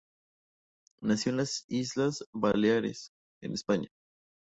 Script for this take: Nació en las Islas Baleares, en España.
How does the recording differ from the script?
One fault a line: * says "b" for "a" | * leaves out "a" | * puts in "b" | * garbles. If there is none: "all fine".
all fine